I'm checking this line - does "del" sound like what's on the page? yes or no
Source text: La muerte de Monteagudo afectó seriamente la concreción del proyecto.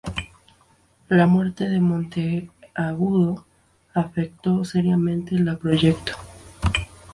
no